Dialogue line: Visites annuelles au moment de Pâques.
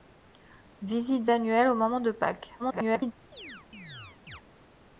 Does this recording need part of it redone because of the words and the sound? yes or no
yes